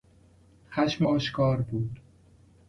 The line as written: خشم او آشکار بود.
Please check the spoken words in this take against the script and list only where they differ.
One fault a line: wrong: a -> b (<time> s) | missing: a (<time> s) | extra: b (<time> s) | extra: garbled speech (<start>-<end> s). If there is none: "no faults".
missing: او (1.1 s)